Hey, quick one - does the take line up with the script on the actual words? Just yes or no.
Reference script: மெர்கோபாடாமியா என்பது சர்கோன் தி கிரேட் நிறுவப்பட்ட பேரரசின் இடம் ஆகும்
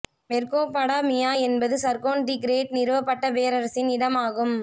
yes